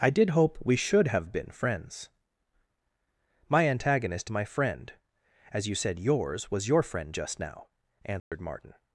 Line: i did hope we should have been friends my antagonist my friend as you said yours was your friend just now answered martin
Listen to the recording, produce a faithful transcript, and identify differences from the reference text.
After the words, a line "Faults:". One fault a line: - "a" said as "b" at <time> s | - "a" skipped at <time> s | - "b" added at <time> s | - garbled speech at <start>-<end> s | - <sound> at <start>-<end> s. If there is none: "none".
i did hope we should have been friends my antagonist my friend as you said yours was your friend just now answered martin
Faults:
- dropout at 8.2-8.3 s